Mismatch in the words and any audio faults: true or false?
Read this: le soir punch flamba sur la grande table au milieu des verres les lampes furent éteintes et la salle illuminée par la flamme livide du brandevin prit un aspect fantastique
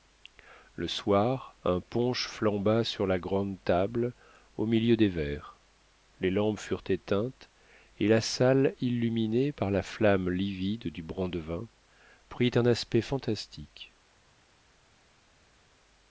true